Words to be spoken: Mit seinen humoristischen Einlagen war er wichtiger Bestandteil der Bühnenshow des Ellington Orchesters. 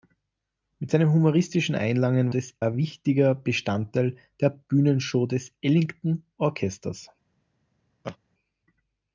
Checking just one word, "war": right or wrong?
wrong